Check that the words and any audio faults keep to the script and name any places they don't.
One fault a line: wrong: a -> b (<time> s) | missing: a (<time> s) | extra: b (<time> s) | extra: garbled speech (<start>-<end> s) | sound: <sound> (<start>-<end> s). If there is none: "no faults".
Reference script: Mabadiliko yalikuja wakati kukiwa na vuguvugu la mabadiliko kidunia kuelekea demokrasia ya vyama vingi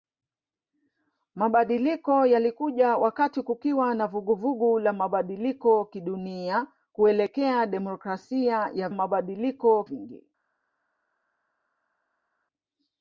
wrong: vyama -> mabadiliko (8.9 s)